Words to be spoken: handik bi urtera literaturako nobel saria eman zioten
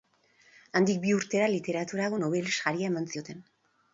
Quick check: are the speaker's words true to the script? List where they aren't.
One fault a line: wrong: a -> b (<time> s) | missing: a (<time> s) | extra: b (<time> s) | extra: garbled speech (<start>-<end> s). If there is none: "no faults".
no faults